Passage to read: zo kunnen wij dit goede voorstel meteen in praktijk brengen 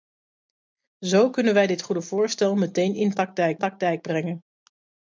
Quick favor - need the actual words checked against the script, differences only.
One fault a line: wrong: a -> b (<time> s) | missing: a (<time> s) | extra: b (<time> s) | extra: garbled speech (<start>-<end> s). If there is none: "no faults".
extra: praktijk (3.6 s)